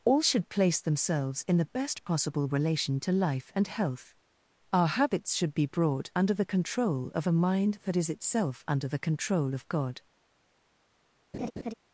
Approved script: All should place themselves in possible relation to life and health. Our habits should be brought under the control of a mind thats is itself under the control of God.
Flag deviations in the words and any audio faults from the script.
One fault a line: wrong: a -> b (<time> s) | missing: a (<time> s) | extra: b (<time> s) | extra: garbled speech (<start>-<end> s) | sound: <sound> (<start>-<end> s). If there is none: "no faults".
extra: the best (1.6 s)
wrong: thats -> that (7.8 s)
sound: laugh (11.3-11.7 s)